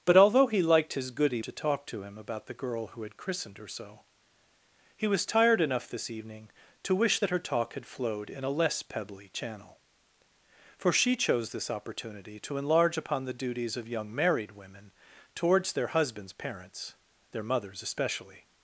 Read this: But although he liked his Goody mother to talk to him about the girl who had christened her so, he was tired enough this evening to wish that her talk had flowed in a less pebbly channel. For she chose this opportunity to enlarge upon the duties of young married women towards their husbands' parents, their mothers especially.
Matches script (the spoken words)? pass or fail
fail